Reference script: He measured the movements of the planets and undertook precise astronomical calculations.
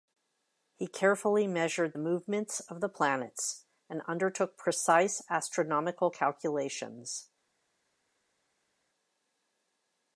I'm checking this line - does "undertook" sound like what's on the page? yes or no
yes